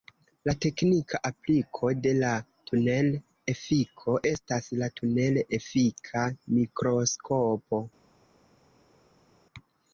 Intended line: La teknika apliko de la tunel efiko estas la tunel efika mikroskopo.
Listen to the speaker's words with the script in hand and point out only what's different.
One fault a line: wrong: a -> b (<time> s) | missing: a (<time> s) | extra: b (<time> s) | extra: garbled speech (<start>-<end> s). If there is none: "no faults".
no faults